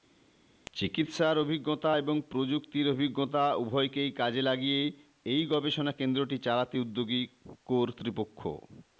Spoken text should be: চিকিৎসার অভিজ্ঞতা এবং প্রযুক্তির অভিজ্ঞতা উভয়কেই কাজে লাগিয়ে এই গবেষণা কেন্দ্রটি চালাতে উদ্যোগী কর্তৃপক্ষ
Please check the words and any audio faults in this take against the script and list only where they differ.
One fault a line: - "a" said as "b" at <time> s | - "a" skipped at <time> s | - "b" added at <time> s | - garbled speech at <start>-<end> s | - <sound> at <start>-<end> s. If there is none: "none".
none